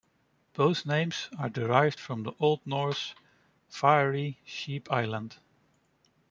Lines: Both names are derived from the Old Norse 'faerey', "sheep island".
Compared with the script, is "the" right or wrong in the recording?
right